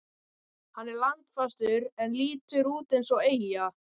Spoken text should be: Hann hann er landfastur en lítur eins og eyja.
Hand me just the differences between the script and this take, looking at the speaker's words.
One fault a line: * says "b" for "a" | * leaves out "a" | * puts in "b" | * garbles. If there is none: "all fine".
* leaves out "hann"
* puts in "út"